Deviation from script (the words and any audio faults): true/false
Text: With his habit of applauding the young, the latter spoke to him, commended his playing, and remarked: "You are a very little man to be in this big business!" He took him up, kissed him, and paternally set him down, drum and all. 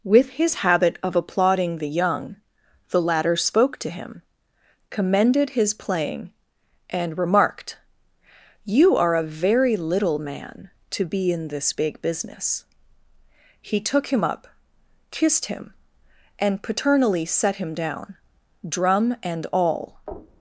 false